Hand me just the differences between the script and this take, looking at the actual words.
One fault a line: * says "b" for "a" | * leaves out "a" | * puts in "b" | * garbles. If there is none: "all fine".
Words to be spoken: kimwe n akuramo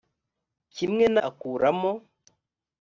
all fine